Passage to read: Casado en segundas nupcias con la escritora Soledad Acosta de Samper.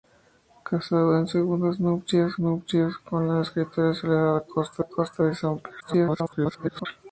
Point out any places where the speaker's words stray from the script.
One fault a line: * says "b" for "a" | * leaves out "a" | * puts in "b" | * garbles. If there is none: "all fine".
* puts in "nupcias"
* puts in "Acosta"
* garbles